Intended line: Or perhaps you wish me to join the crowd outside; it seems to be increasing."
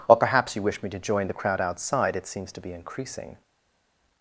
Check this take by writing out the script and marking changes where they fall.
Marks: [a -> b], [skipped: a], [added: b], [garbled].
Or perhaps you wish me to join the crowd outside; it seems to be increasing."